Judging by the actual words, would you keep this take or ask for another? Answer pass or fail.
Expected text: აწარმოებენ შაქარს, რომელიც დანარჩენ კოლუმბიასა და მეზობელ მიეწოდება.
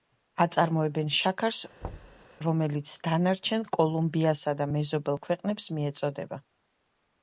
fail